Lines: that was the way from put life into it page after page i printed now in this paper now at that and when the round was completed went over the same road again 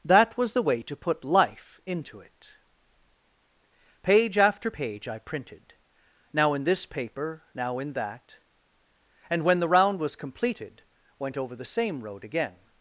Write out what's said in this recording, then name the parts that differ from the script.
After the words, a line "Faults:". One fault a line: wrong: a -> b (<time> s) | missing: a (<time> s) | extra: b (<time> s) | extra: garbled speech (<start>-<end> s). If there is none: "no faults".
that was the way to put life into it page after page i printed now in this paper now in that and when the round was completed went over the same road again
Faults:
wrong: from -> to (0.8 s)
wrong: at -> in (7.8 s)